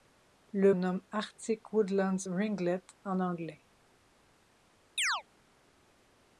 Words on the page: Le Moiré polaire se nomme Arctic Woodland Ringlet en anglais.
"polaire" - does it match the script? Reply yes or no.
no